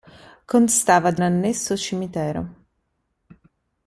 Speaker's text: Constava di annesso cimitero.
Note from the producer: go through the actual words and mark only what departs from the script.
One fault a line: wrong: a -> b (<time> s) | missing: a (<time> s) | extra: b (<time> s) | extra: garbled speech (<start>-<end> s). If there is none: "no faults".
no faults